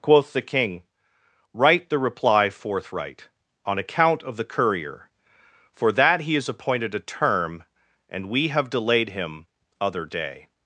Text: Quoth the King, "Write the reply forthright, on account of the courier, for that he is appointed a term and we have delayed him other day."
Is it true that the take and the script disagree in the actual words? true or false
false